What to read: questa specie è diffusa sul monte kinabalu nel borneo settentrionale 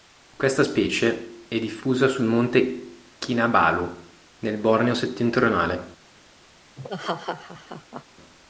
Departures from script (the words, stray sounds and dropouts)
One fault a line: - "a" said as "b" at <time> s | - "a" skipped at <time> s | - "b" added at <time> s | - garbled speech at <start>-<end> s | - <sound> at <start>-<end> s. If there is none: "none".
- laugh at 6.8-8.0 s